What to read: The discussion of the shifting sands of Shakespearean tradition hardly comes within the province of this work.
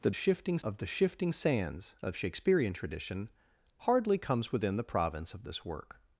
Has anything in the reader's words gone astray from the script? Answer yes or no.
yes